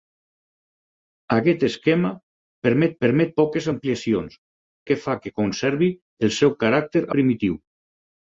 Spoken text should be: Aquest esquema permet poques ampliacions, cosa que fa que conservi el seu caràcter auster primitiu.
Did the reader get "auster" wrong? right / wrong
wrong